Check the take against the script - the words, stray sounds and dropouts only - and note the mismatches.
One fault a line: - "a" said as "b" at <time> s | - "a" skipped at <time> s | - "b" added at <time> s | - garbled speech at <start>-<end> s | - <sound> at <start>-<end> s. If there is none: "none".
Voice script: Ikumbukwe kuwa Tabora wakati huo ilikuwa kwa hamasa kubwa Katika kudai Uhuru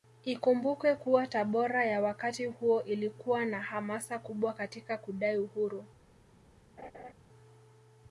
- "ya" added at 1.8 s
- "kwa" said as "na" at 3.4 s
- laugh at 6.8-7.1 s